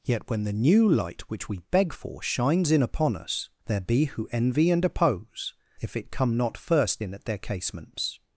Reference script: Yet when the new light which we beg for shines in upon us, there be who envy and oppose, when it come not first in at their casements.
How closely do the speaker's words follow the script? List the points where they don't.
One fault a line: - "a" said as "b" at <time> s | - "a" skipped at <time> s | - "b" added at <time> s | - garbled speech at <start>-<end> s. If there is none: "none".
- "when" said as "if" at 5.8 s